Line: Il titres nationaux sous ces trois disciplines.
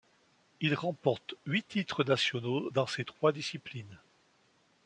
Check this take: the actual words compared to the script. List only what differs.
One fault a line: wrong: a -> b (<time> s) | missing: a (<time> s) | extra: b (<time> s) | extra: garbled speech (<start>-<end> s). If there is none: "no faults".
extra: remporte huit (0.7 s)
wrong: sous -> dans (2.7 s)